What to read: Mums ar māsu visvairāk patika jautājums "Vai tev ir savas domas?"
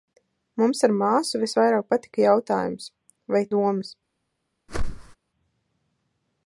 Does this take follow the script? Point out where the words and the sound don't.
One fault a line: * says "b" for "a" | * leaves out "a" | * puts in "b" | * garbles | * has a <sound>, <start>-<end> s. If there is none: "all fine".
* leaves out "tev ir savas"
* has a whoosh, 4.7-5.2 s